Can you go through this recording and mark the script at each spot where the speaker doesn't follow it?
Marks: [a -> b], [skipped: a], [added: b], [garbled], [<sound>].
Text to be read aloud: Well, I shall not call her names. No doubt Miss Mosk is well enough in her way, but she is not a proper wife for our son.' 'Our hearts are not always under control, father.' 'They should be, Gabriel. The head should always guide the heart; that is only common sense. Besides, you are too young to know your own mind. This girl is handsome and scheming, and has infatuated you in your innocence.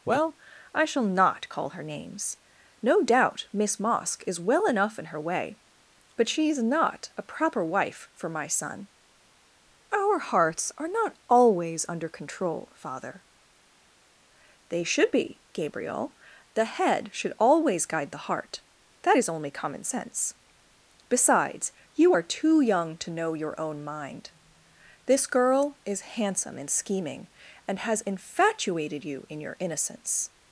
Well, I shall not call her names. No doubt Miss Mosk is well enough in her way, but she is not a proper wife for [our -> my] son.' 'Our hearts are not always under control, father.' 'They should be, Gabriel. The head should always guide the heart; that is only common sense. Besides, you are too young to know your own mind. This girl is handsome and scheming, and has infatuated you in your innocence.